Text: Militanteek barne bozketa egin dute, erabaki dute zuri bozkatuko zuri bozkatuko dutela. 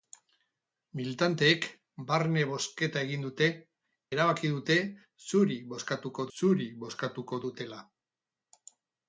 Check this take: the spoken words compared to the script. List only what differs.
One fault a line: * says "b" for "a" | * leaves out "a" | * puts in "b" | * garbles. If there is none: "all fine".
all fine